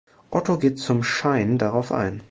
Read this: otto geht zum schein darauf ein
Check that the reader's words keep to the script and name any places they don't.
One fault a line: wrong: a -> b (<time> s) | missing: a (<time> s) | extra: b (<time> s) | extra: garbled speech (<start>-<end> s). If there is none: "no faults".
no faults